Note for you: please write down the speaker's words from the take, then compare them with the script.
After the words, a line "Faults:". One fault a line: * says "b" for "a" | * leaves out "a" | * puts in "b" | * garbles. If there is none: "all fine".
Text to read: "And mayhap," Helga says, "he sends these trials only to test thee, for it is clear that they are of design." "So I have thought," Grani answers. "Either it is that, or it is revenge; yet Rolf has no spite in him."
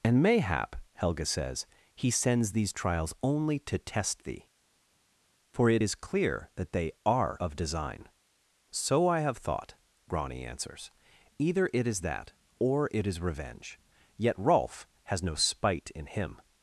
"And mayhap," Helga says, "he sends these trials only to test thee, for it is clear that they are of design." "So I have thought," Grani answers. "Either it is that, or it is revenge; yet Rolf has no spite in him."
Faults:
all fine